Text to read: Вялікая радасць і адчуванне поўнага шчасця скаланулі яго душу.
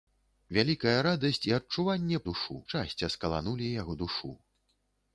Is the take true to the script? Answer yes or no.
no